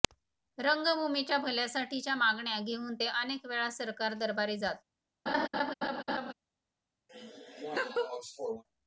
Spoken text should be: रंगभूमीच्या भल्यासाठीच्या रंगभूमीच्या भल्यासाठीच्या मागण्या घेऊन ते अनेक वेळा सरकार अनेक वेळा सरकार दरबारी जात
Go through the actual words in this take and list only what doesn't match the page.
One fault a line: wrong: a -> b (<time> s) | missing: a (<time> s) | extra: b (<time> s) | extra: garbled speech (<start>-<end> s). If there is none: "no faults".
missing: रंगभूमीच्या भल्यासाठीच्या (2.1 s)
missing: अनेक वेळा सरकार (4.1 s)